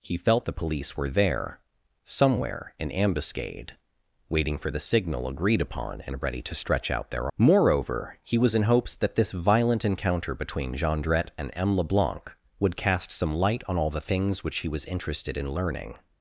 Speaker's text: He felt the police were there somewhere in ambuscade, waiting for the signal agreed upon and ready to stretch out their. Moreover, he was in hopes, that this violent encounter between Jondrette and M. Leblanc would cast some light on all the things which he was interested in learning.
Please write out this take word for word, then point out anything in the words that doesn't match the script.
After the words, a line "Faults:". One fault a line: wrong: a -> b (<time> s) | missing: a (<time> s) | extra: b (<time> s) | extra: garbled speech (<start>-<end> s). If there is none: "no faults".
He felt the police were there somewhere in ambuscade, waiting for the signal agreed upon and ready to stretch out their. Moreover, he was in hopes, that this violent encounter between Jondrette and M. Leblanc would cast some light on all the things which he was interested in learning.
Faults:
no faults